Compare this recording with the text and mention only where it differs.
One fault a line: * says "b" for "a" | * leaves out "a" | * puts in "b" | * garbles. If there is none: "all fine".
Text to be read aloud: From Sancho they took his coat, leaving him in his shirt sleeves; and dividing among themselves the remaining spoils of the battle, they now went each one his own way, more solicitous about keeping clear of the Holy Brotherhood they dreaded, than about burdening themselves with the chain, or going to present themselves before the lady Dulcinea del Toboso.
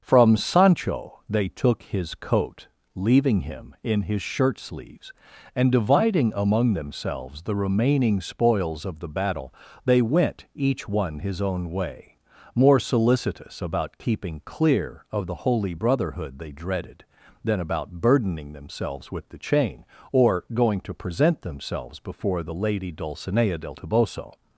* leaves out "now"